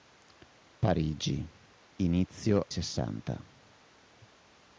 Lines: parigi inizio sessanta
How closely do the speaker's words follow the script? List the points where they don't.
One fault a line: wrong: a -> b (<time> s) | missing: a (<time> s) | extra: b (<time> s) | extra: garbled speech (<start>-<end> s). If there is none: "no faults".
no faults